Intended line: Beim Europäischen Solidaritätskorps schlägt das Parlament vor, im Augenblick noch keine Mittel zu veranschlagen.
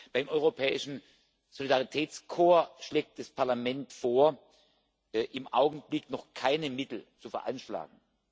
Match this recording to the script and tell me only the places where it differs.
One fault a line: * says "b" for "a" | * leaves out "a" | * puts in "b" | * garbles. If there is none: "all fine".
all fine